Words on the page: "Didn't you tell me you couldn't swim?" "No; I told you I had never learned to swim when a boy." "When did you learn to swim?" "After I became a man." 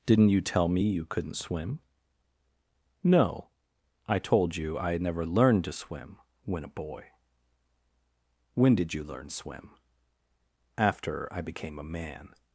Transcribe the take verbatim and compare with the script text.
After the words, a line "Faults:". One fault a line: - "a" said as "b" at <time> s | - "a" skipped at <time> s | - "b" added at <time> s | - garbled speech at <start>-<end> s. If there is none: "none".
"Didn't you tell me you couldn't swim?" "No; I told you I had never learned to swim when a boy." "When did you learn swim?" "After I became a man."
Faults:
- "to" skipped at 9.3 s